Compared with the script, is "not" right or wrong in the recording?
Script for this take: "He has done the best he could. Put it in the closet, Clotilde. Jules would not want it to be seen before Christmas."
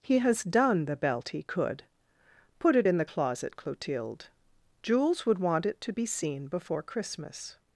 wrong